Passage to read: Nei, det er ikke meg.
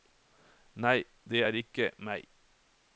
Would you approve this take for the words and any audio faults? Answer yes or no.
yes